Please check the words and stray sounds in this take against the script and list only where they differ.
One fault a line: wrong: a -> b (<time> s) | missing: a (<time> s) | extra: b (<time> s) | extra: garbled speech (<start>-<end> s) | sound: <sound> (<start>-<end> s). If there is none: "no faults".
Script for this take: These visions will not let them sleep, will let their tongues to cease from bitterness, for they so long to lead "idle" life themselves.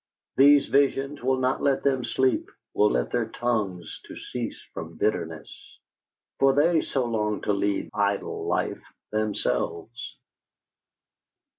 no faults